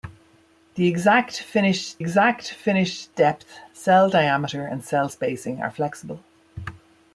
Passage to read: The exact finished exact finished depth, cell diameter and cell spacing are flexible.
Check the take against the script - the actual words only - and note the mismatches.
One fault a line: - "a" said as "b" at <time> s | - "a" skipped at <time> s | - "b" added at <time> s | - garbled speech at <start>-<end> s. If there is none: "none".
none